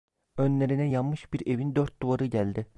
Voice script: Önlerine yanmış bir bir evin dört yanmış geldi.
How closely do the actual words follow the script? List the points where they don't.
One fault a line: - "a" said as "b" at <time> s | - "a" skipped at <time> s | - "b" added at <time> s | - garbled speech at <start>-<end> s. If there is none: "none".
- "bir" skipped at 1.5 s
- "yanmış" said as "duvarı" at 2.0 s